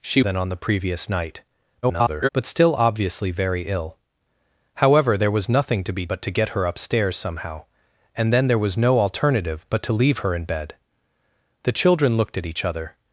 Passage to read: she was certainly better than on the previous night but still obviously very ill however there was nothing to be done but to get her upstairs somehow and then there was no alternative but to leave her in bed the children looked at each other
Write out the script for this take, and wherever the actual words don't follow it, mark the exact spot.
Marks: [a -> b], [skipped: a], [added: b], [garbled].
she [skipped: was certainly better] than on the previous night [garbled] but still obviously very ill however there was nothing to be [skipped: done] but to get her upstairs somehow and then there was no alternative but to leave her in bed the children looked at each other